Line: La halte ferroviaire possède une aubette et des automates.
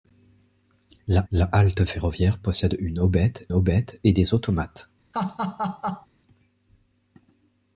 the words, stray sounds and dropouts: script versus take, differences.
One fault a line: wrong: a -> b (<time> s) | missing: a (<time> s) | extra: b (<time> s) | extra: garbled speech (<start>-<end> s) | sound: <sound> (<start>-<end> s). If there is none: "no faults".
extra: la (1.3 s)
extra: aubette (3.5 s)
sound: laugh (5.1-6.1 s)